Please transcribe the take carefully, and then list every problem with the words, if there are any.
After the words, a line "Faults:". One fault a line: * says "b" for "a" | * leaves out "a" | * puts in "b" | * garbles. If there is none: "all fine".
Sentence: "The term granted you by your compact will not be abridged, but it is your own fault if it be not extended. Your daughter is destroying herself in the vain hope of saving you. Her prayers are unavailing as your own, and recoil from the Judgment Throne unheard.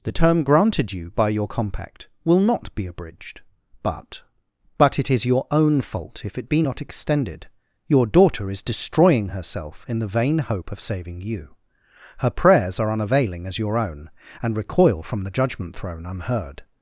"The term granted you by your compact will not be abridged, but but it is your own fault if it be not extended. Your daughter is destroying herself in the vain hope of saving you. Her prayers are unavailing as your own, and recoil from the Judgment Throne unheard.
Faults:
* puts in "but"